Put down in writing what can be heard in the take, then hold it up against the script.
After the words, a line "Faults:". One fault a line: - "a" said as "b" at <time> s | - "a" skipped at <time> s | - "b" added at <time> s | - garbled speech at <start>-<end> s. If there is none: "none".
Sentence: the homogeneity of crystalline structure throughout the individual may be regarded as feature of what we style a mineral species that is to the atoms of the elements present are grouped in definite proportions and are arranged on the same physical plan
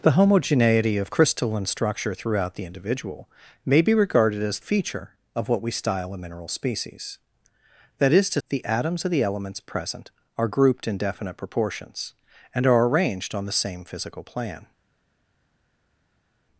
the homogeneity of crystalline structure throughout the individual may be regarded as feature of what we style a mineral species that is to the atoms of the elements present are grouped in definite proportions and are arranged on the same physical plan
Faults:
none